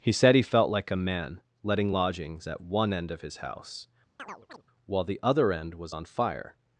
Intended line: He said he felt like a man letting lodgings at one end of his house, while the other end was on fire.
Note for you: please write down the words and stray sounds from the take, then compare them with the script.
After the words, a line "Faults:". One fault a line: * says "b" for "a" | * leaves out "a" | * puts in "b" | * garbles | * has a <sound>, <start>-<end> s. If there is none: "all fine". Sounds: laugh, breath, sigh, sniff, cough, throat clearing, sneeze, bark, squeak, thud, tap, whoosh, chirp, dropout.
He said he felt like a man letting lodgings at one end of his house, while the other end was on fire.
Faults:
* has a chirp, 4.2-4.6 s